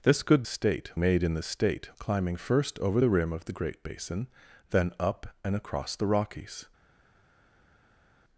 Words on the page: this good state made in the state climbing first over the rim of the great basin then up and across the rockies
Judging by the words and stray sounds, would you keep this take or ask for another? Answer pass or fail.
pass